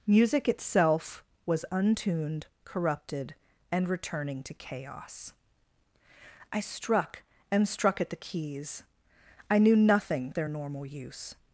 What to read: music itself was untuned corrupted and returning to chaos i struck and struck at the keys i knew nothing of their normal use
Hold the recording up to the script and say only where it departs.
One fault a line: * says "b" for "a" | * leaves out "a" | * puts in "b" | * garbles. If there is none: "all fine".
* leaves out "of"